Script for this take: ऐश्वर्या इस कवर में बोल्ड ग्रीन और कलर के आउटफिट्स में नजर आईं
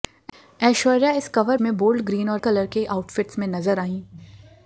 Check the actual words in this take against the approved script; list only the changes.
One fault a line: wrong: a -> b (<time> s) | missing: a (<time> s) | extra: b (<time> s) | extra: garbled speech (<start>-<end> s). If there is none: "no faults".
no faults